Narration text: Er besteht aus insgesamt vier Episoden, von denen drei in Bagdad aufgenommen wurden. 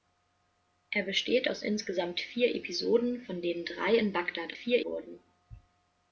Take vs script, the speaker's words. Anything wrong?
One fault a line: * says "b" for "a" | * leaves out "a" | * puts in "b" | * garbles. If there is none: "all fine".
* says "vier" for "aufgenommen"